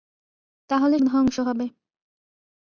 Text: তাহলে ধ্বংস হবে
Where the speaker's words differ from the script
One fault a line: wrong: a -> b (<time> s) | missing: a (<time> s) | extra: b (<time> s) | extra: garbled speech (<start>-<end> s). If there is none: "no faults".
no faults